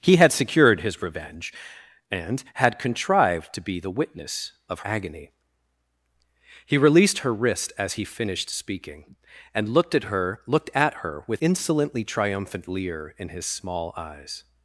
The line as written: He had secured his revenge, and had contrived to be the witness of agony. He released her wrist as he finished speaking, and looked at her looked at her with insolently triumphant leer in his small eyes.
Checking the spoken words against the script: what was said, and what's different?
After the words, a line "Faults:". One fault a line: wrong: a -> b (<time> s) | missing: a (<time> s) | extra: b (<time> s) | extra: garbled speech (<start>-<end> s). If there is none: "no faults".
He had secured his revenge, and had contrived to be the witness of agony. He released her wrist as he finished speaking, and looked at her looked at her with insolently triumphant leer in his small eyes.
Faults:
no faults